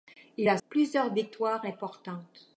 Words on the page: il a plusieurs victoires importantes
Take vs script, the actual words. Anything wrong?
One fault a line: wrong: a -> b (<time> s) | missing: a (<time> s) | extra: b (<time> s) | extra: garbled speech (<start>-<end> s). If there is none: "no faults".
no faults